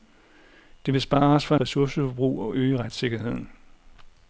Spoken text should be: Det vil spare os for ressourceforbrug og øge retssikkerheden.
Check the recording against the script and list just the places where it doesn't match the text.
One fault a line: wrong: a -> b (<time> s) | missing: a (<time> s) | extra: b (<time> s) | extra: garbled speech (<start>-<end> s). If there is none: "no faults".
no faults